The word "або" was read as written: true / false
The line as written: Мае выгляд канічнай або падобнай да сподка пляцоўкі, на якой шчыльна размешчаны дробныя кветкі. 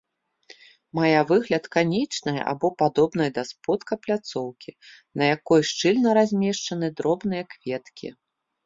true